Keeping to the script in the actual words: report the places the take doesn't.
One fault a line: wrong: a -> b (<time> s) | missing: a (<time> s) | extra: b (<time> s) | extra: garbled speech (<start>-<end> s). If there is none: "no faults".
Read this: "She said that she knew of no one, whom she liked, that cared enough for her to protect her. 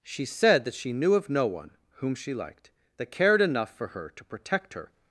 no faults